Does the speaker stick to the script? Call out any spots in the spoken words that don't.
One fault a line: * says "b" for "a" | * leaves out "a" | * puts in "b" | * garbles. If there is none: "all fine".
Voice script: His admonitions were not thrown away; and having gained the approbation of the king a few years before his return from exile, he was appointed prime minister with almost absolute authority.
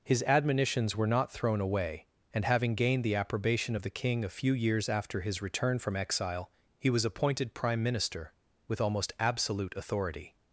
* says "after" for "before"